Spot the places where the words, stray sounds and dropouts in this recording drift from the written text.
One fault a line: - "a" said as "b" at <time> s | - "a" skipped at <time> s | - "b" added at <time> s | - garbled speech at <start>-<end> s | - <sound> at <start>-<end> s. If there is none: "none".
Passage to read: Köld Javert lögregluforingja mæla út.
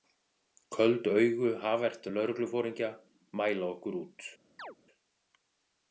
- "augu" added at 1.1 s
- "okkur" added at 3.7 s
- chirp at 4.6-4.8 s